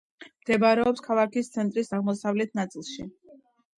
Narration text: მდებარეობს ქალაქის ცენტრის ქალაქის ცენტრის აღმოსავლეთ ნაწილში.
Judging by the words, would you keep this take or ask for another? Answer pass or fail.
fail